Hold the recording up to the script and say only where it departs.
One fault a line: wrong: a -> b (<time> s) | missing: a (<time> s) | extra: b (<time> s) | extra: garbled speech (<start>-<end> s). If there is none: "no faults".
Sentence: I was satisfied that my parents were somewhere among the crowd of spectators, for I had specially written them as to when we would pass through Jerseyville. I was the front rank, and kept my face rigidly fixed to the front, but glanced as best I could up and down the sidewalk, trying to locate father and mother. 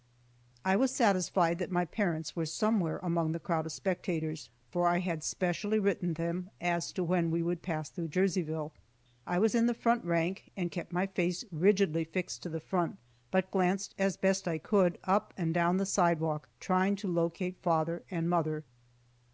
extra: in (9.5 s)